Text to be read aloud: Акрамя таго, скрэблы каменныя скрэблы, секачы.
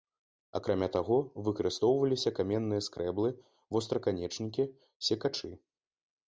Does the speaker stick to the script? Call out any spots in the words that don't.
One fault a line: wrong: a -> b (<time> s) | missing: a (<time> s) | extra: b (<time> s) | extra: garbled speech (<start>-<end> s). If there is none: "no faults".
wrong: скрэблы -> выкарыстоўваліся (1.5 s)
extra: востраканечнікі (3.8 s)